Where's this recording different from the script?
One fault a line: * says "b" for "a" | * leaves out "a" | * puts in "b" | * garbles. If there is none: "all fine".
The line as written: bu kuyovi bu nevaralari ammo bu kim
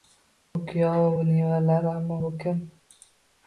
all fine